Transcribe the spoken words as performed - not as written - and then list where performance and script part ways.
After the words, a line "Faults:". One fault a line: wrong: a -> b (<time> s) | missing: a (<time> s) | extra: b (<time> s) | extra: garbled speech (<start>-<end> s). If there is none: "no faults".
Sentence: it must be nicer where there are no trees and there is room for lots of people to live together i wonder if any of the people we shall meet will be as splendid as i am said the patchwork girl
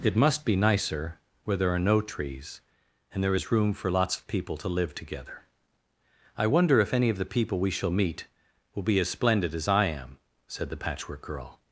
it must be nicer where there are no trees and there is room for lots of people to live together i wonder if any of the people we shall meet will be as splendid as i am said the patchwork girl
Faults:
no faults